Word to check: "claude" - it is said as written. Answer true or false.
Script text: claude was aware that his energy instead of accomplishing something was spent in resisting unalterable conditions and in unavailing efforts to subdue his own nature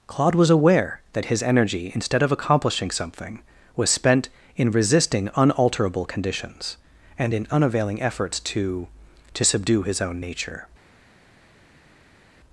true